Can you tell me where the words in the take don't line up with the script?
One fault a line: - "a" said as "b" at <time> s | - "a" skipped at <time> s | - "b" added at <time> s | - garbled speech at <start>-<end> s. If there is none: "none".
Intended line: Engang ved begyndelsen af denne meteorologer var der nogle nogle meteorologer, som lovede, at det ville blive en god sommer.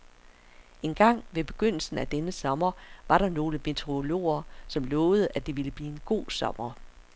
- "meteorologer" said as "sommer" at 2.3 s
- "nogle" skipped at 3.6 s